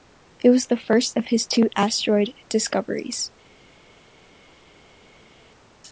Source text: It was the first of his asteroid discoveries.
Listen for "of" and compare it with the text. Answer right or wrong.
right